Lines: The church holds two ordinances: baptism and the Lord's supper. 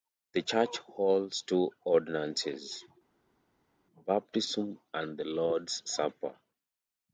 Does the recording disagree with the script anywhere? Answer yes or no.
no